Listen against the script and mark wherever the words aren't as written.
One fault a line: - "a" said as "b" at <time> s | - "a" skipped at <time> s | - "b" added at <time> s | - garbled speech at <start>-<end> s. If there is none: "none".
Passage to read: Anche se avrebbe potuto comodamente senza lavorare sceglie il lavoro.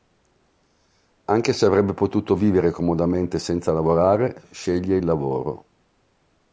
- "vivere" added at 2.3 s